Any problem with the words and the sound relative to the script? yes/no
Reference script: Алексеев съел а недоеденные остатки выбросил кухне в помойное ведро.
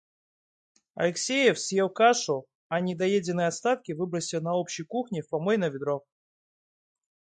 yes